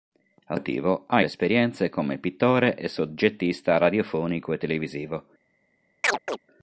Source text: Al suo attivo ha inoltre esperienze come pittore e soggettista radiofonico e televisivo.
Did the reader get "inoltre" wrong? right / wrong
wrong